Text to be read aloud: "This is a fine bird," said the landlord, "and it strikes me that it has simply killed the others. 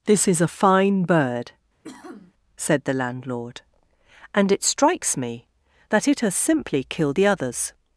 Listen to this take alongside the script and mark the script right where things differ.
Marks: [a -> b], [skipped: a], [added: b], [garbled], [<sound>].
"This is a fine bird," [sniff] said the landlord, "and it strikes me that it has simply killed the others.